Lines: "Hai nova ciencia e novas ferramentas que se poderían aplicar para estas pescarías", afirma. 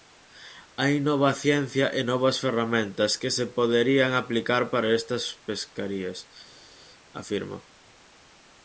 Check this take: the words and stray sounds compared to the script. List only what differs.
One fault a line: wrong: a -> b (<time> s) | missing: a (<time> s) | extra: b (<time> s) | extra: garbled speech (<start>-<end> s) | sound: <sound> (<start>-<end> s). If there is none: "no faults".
no faults